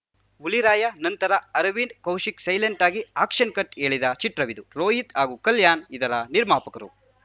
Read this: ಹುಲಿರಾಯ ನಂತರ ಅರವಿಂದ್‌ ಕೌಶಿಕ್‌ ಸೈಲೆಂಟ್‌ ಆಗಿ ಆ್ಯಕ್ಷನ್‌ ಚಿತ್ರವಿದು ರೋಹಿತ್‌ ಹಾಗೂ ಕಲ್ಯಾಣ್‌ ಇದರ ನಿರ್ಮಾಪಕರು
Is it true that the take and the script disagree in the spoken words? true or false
true